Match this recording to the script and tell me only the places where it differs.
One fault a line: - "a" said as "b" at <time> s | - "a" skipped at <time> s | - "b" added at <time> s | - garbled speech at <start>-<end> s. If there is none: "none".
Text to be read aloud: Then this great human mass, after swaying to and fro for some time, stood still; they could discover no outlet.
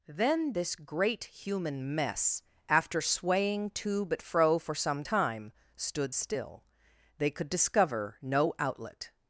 - "mass" said as "mess" at 1.9 s
- "and" said as "but" at 4.0 s